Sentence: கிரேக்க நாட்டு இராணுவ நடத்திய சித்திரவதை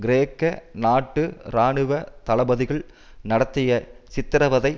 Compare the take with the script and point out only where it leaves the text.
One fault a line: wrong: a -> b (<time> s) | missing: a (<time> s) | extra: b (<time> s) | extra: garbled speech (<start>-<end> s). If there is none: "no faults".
extra: தளபதிகள் (2.2 s)